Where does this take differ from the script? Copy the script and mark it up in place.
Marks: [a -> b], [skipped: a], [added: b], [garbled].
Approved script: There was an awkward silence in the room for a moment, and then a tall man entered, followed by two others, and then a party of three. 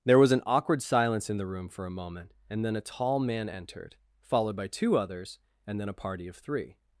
There was an awkward silence in the room for a moment, and then a tall man entered, followed by two others, and then a party of three.